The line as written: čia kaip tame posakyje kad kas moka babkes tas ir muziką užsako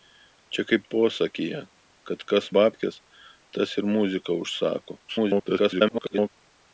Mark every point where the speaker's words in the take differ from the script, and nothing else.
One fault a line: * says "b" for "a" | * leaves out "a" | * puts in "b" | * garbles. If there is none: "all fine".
* leaves out "tame"
* leaves out "moka"
* garbles